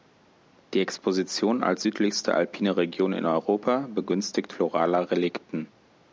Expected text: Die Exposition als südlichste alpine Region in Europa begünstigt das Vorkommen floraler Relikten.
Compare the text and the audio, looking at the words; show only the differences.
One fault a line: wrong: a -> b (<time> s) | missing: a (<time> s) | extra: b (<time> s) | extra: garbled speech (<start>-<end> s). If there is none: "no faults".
missing: das Vorkommen (4.5 s)